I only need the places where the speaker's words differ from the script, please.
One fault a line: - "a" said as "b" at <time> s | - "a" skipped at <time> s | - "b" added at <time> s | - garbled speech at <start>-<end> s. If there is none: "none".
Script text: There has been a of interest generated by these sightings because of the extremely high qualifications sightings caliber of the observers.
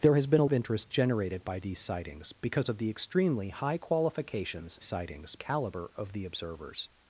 none